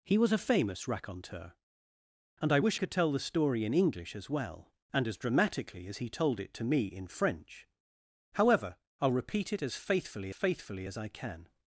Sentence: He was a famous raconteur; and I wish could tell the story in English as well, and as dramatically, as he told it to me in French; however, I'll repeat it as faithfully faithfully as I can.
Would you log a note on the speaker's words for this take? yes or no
no